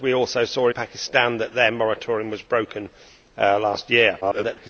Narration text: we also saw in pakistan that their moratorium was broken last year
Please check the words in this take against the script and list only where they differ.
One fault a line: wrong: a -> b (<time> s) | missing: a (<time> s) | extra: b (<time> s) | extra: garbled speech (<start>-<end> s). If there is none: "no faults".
missing: in (0.7 s)
extra: garbled speech (4.2-4.7 s)